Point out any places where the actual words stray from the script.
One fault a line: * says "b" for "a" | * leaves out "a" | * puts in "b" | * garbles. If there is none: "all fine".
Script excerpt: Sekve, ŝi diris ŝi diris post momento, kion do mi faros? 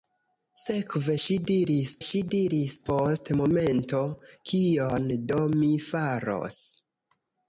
all fine